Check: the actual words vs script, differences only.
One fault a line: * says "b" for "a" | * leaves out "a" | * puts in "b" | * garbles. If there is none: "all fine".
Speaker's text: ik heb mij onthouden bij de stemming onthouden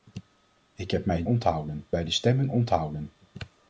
all fine